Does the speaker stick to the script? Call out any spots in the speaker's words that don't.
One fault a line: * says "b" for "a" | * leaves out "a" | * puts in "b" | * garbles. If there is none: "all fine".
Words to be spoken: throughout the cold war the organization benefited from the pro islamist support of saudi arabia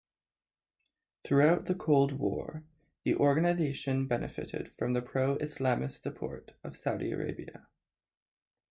all fine